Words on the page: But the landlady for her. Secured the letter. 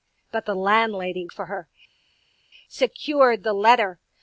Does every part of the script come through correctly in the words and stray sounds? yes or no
yes